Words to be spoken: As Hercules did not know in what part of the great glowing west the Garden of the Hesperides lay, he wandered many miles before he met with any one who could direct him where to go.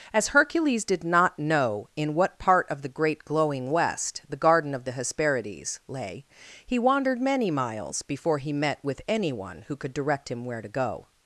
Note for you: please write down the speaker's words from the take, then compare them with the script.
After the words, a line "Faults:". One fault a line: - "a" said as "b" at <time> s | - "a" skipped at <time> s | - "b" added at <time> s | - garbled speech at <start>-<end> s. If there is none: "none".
As Hercules did not know in what part of the great glowing west the Garden of the Hesperides lay, he wandered many miles before he met with any one who could direct him where to go.
Faults:
none